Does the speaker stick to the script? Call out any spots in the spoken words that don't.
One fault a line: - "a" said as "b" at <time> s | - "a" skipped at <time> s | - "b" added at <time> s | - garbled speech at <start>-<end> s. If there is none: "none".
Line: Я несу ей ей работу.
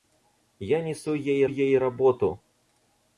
none